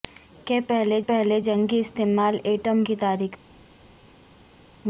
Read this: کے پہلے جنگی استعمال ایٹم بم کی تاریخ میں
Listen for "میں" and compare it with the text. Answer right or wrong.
right